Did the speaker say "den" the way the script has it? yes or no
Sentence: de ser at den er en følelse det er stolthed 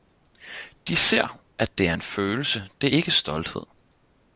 no